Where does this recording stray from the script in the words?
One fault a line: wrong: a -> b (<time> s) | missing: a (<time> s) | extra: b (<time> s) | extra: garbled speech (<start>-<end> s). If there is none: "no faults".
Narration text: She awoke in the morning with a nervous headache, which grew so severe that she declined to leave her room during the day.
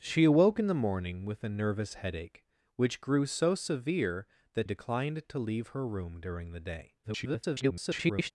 missing: she (4.7 s)
extra: garbled speech (7.0-8.3 s)